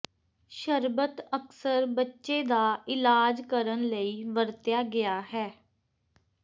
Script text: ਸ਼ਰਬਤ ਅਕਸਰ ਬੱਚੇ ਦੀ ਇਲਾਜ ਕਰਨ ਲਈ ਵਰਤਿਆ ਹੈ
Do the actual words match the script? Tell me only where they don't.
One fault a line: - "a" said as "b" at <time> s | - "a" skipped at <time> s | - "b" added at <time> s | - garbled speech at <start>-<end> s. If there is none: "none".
- "ਦੀ" said as "ਦਾ" at 2.4 s
- "ਗਿਆ" added at 4.9 s